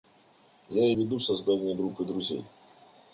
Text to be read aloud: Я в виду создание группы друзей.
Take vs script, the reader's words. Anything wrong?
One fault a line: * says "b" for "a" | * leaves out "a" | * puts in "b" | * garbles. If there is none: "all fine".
all fine